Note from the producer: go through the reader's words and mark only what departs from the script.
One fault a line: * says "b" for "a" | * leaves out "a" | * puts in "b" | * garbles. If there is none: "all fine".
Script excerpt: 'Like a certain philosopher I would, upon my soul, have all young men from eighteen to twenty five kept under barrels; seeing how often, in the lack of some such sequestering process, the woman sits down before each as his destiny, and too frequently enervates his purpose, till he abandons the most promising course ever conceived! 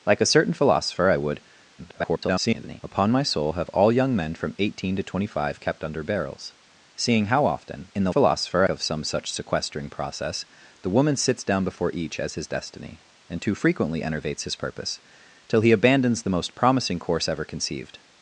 * garbles
* says "philosopher" for "lack"